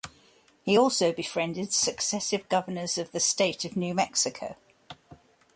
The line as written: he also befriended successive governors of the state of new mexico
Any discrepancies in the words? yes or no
no